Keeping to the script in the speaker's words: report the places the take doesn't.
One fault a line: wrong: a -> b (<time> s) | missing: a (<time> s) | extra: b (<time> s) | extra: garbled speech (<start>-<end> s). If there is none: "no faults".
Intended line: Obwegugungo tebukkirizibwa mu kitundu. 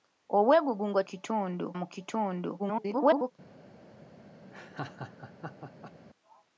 wrong: tebukkirizibwa -> kitundu (1.1 s)
extra: garbled speech (2.6-3.3 s)